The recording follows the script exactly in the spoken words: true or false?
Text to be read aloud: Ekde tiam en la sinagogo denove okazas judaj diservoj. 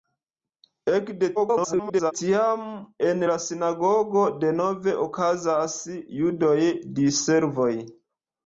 false